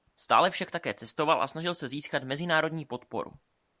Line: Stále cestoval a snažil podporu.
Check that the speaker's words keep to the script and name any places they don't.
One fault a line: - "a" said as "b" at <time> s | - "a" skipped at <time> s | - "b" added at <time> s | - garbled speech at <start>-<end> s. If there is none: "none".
- "však také" added at 0.5 s
- "se získat mezinárodní" added at 1.8 s